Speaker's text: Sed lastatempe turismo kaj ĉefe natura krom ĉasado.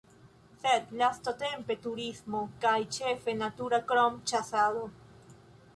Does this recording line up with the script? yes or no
yes